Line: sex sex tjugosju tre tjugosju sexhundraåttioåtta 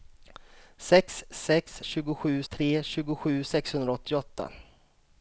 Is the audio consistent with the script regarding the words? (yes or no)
yes